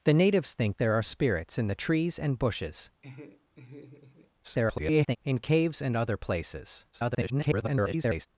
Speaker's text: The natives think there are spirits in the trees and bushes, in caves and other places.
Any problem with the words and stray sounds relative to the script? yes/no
yes